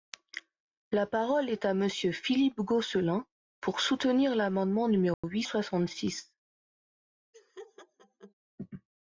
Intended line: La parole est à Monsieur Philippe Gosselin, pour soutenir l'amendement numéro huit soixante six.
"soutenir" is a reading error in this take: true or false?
false